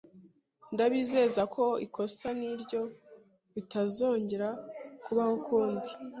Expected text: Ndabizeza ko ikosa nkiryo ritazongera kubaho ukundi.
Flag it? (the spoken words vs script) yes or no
no